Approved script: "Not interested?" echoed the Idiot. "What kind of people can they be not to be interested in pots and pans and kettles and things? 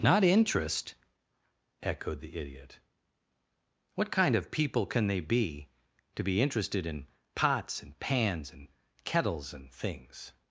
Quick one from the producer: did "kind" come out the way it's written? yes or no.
yes